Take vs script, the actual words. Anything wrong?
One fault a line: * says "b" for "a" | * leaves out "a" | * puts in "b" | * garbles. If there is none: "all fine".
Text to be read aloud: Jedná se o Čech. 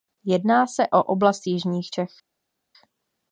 * puts in "oblast Jižních"